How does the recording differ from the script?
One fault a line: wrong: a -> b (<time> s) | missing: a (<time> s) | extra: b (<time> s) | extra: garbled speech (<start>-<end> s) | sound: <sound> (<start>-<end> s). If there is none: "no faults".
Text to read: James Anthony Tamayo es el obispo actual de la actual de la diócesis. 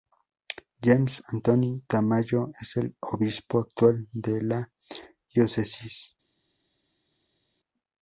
missing: actual de la (4.7 s)